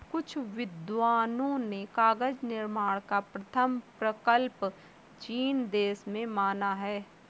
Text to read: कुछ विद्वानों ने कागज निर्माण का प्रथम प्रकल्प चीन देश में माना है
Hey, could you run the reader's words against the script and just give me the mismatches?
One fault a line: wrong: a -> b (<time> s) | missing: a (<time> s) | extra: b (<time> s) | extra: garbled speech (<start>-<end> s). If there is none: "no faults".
no faults